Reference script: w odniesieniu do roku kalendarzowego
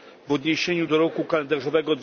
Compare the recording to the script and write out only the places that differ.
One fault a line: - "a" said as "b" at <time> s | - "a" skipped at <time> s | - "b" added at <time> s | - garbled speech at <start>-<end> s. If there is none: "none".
none